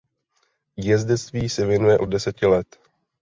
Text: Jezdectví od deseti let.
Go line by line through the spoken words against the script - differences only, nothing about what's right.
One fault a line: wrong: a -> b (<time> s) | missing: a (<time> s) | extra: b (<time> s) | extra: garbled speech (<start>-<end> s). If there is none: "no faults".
extra: se věnuje (1.5 s)